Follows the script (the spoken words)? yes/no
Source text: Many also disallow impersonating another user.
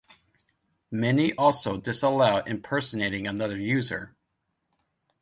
yes